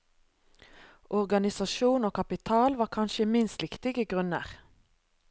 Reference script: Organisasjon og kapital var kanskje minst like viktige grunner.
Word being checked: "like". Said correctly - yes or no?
no